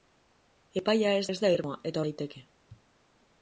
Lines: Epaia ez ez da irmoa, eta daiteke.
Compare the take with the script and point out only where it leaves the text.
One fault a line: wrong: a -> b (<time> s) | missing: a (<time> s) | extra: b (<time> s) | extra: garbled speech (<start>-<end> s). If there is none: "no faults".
no faults